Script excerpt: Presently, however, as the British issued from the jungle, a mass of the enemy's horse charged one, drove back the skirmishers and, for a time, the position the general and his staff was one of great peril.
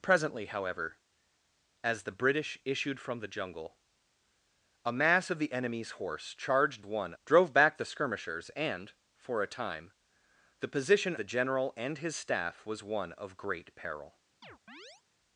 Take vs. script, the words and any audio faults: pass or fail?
fail